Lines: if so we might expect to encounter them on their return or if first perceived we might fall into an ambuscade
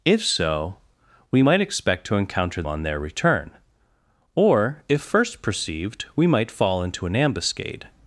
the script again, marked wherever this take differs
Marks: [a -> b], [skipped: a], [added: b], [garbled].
if so we might expect to encounter [skipped: them] on their return or if first perceived we might fall into an ambuscade